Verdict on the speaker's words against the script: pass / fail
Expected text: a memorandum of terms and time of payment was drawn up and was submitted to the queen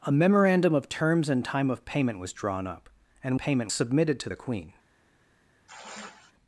fail